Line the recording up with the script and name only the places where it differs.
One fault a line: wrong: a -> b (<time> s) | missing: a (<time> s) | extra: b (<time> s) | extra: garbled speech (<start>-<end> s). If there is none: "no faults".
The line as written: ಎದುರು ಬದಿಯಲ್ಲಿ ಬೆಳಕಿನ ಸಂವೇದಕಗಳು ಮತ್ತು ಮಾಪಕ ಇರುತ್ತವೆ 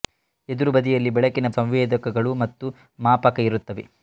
no faults